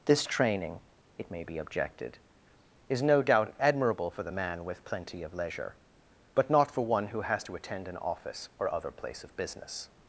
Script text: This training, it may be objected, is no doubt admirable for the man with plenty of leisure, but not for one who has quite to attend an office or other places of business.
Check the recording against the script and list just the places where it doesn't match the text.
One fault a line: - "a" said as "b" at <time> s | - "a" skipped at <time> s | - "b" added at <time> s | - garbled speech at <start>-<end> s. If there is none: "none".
- "quite" skipped at 7.4 s
- "places" said as "place" at 8.9 s